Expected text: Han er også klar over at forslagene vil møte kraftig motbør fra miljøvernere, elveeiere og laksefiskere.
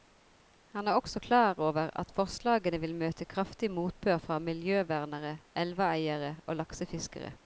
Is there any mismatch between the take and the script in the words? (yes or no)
no